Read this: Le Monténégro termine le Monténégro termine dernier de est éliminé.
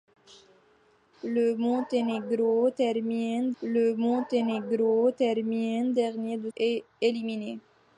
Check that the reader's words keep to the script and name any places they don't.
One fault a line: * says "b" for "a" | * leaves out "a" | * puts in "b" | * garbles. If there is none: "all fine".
all fine